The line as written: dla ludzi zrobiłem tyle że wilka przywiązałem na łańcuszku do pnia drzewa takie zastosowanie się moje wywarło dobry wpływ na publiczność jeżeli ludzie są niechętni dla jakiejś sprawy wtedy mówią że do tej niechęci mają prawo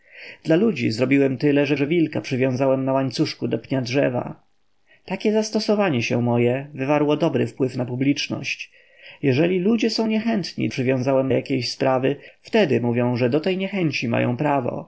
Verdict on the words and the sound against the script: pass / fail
fail